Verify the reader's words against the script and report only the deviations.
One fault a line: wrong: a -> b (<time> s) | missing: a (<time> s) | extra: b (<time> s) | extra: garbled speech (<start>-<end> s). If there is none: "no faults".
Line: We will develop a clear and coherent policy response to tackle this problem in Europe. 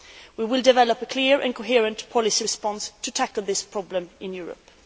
no faults